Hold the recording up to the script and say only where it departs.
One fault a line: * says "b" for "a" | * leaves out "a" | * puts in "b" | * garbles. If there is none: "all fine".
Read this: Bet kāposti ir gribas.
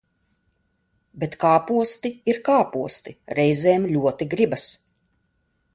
* puts in "kāposti reizēm ļoti"